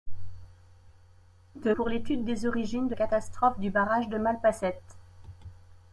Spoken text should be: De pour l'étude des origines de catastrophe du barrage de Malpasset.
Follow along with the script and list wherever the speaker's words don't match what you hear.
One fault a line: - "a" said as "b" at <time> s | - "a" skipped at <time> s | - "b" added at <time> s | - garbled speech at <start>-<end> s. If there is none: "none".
none